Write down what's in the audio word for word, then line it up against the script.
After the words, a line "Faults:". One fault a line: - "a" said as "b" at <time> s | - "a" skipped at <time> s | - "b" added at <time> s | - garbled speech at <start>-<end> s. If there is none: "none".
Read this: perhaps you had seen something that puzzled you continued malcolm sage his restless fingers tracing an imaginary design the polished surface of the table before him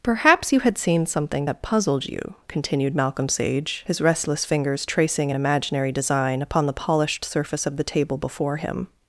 perhaps you had seen something that puzzled you continued malcolm sage his restless fingers tracing an imaginary design upon the polished surface of the table before him
Faults:
- "upon" added at 6.4 s